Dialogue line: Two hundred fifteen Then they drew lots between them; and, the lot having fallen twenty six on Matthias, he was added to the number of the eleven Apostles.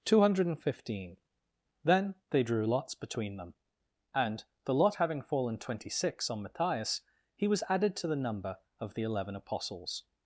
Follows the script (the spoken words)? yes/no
yes